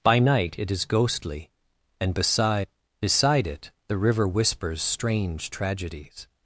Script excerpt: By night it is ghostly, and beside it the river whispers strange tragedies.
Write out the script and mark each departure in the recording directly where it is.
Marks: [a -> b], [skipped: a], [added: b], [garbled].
By night it is ghostly, and beside [added: beside] it the river whispers strange tragedies.